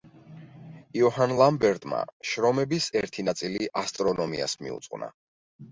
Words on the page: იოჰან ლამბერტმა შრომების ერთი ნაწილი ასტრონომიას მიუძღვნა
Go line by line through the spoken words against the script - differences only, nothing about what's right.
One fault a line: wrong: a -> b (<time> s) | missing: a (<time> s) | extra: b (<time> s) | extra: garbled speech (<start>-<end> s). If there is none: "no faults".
no faults